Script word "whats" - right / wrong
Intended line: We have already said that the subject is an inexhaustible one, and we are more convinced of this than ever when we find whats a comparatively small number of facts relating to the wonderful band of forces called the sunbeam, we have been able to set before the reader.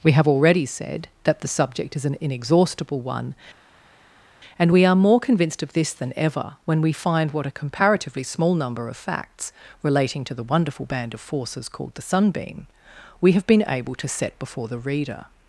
wrong